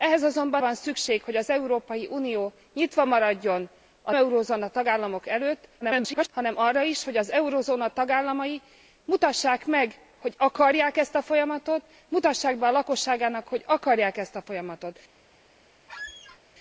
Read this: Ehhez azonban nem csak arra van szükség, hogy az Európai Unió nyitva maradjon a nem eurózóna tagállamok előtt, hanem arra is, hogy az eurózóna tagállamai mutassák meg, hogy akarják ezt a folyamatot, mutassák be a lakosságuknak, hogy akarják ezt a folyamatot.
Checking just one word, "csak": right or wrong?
wrong